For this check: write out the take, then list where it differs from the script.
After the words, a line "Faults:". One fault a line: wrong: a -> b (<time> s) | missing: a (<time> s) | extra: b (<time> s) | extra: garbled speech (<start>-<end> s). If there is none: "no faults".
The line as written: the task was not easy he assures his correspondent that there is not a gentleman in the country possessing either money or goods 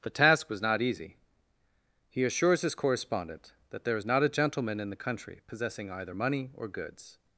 the task was not easy he assures his correspondent that there is not a gentleman in the country possessing either money or goods
Faults:
no faults